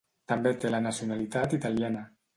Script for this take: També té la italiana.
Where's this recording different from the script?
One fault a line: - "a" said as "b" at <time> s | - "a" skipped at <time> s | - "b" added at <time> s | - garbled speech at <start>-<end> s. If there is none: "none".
- "nacionalitat" added at 0.8 s